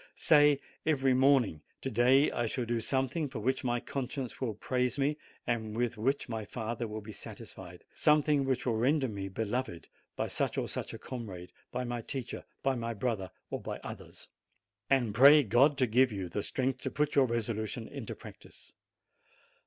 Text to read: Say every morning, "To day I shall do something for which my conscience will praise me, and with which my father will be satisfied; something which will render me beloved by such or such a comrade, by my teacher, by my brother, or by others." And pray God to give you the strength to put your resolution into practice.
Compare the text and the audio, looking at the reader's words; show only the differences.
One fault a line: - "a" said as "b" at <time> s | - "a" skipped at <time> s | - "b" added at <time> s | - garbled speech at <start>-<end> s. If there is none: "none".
none